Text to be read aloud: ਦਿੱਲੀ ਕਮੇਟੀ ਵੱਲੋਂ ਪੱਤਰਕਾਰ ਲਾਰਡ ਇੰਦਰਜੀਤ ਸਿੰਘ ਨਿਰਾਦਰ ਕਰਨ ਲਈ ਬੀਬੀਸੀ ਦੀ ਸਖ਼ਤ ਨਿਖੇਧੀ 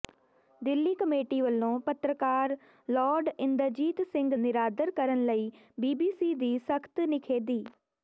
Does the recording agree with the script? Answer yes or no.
yes